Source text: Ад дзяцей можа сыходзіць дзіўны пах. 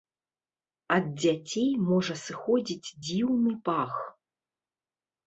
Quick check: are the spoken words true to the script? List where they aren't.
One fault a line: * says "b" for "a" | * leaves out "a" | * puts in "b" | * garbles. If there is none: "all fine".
all fine